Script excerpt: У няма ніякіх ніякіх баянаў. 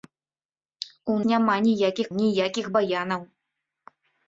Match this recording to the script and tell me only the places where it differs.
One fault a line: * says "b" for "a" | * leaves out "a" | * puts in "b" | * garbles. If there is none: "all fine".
all fine